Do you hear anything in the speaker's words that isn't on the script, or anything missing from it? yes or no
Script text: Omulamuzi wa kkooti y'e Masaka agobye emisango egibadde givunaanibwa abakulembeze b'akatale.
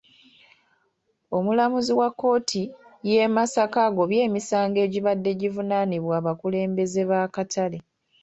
no